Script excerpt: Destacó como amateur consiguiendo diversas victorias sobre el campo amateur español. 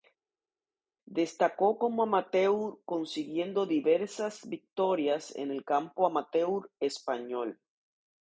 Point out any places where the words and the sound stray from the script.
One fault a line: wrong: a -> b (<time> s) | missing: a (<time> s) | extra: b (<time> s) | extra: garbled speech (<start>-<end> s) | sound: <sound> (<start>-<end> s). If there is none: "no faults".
wrong: sobre -> en (5.4 s)